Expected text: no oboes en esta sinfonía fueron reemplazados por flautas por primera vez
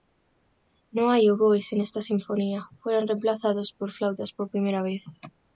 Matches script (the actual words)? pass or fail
fail